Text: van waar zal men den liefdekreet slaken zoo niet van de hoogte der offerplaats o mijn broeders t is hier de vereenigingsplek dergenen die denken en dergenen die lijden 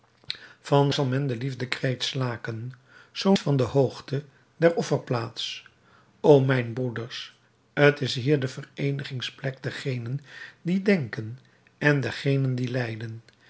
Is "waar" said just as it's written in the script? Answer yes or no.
no